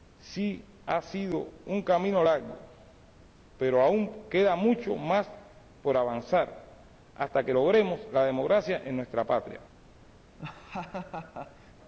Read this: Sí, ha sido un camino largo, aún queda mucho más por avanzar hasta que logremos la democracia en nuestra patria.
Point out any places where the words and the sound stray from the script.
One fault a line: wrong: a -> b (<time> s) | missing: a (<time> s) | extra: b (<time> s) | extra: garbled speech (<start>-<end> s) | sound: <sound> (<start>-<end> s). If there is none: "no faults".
extra: pero (3.6 s)
sound: laugh (10.4-11.7 s)